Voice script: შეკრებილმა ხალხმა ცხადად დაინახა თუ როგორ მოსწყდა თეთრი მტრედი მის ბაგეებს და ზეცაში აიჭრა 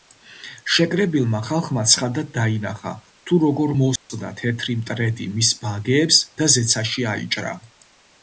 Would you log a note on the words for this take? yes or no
no